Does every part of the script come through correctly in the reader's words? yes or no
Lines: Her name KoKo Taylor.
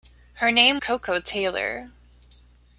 yes